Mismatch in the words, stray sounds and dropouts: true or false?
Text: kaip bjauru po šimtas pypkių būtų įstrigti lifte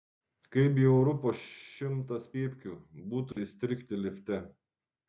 true